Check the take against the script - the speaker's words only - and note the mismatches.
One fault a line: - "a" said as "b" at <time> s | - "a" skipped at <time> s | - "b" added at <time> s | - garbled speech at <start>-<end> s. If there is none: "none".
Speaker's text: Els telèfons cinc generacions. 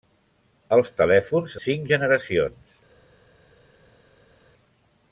none